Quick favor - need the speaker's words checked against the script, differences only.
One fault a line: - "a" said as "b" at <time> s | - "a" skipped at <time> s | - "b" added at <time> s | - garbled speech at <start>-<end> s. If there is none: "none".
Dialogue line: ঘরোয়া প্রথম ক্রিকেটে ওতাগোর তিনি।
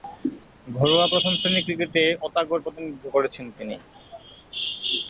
- "শ্রেণীর" added at 1.4 s
- "প্রতিনিধিত্ব করেছেন" added at 2.6 s